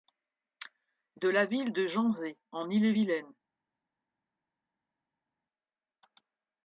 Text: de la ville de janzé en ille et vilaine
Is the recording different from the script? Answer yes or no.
no